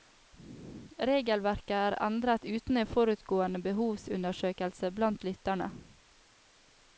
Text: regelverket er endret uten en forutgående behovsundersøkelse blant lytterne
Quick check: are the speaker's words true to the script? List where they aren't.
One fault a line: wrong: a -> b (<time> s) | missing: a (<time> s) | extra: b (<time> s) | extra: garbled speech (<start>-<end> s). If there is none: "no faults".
no faults